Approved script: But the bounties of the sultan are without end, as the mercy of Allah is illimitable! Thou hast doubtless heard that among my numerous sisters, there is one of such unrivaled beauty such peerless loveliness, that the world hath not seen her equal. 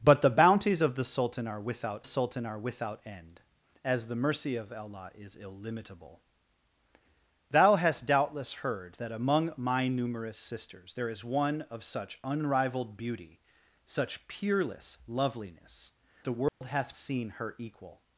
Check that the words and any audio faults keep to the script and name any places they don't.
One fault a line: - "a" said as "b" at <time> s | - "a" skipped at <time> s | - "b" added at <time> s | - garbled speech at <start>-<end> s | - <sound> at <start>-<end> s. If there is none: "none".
- "sultan are without" added at 2.0 s
- "that" skipped at 15.9 s
- dropout at 16.5-16.6 s
- "not" skipped at 16.9 s